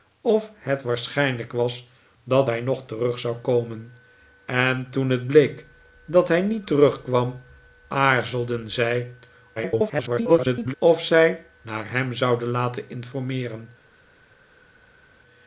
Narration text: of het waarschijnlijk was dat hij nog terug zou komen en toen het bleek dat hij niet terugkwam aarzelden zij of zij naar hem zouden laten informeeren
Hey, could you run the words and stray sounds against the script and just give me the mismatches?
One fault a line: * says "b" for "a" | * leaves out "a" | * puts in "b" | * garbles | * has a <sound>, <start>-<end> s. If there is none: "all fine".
* garbles